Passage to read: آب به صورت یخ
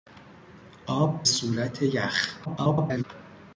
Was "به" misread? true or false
true